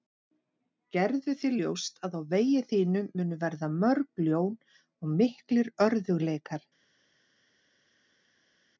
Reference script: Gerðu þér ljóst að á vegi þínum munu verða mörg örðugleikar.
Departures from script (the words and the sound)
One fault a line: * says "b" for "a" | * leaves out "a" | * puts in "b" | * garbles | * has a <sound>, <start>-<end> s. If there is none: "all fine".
* puts in "ljón og miklir"